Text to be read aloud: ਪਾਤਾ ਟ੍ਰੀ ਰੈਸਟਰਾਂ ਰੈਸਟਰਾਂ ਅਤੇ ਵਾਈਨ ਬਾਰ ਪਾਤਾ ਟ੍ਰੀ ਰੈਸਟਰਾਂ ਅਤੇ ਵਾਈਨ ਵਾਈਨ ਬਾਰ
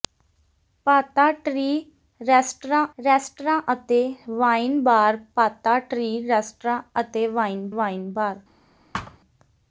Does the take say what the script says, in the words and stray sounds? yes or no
no